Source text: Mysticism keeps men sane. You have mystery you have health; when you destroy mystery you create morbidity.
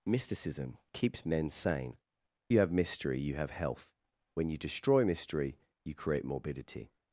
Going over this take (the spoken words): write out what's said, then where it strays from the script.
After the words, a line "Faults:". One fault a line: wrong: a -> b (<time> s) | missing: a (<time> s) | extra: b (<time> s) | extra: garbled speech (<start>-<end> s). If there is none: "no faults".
Mysticism keeps men sane. You have mystery you have health; when you destroy mystery you create morbidity.
Faults:
no faults